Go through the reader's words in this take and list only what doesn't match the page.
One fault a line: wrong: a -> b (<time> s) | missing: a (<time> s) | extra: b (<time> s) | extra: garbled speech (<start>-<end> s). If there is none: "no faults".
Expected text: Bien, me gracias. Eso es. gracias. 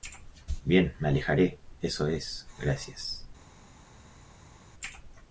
wrong: gracias -> alejaré (1.1 s)